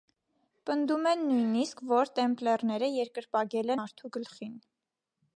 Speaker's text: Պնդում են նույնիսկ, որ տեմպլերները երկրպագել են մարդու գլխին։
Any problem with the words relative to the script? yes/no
yes